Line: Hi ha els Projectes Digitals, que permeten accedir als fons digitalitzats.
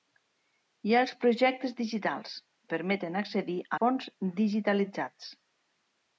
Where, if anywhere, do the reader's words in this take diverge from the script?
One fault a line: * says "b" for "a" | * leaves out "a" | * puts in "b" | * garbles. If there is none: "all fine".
* leaves out "que"
* leaves out "als"